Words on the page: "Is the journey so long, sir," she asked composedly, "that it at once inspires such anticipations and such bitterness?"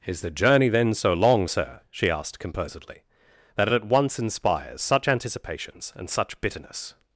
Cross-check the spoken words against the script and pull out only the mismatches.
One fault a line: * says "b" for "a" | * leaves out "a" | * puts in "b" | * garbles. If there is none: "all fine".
* puts in "then"